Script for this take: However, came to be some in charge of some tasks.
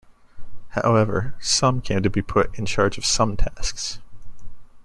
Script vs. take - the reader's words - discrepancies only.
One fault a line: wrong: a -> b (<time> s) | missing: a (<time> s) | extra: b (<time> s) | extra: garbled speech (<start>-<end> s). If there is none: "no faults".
extra: some (1.4 s)
wrong: some -> put (2.2 s)